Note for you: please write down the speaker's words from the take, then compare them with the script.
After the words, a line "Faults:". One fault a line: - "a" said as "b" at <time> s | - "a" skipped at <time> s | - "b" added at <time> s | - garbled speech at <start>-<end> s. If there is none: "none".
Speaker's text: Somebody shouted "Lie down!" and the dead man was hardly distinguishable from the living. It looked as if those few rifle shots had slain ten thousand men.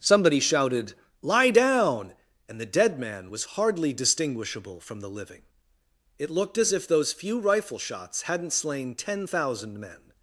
Somebody shouted "Lie down!" and the dead man was hardly distinguishable from the living. It looked as if those few rifle shots hadn't slain ten thousand men.
Faults:
- "had" said as "hadn't" at 8.2 s